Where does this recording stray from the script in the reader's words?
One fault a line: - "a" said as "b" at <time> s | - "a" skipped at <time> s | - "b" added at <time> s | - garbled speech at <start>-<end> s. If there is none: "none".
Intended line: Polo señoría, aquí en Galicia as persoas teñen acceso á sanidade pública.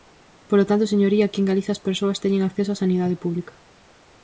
- "tanto" added at 0.7 s